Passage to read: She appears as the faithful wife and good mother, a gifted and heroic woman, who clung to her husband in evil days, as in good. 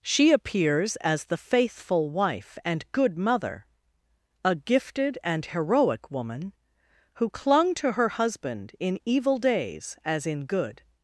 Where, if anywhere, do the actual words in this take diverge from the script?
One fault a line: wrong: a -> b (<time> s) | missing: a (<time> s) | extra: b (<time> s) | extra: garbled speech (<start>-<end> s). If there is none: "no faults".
no faults